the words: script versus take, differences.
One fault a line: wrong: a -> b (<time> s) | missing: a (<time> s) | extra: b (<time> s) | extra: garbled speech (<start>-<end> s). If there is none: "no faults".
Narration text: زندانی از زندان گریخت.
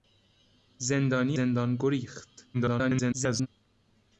missing: از (1.4 s)
extra: garbled speech (2.5-3.5 s)